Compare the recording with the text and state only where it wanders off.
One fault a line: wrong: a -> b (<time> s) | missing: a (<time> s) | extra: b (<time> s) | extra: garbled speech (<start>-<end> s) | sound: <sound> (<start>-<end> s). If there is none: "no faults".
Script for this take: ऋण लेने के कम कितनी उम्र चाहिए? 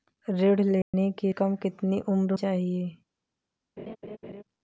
sound: dropout (0.8-0.9 s)
sound: laugh (3.8-4.4 s)